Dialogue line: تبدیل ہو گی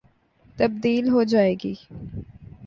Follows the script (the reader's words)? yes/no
no